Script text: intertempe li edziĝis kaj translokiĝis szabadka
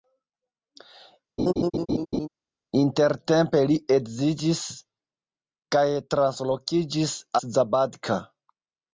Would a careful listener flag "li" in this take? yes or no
no